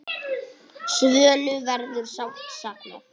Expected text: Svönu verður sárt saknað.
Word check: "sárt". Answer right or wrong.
right